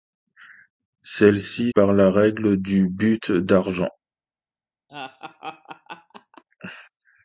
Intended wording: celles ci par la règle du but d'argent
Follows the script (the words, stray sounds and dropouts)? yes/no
no